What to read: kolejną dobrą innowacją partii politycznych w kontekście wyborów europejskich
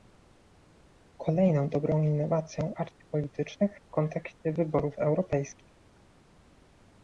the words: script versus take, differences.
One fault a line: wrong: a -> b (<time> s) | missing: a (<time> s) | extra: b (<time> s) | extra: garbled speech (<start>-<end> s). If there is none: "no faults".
no faults